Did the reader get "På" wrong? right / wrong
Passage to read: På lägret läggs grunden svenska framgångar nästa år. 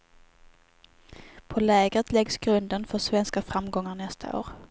right